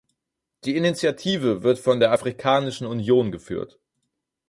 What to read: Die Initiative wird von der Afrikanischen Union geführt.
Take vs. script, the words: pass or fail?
pass